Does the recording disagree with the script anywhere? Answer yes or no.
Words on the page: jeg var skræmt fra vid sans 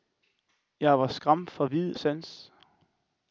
no